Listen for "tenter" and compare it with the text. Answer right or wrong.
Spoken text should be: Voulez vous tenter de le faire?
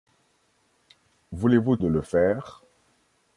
wrong